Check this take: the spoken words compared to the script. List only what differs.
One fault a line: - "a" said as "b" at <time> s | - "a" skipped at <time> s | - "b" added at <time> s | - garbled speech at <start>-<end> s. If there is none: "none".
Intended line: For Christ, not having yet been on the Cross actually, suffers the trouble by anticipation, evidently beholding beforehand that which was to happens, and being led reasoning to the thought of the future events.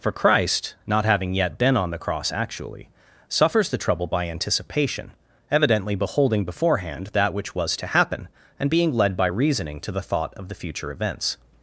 - "happens" said as "happen" at 7.8 s
- "by" added at 9.2 s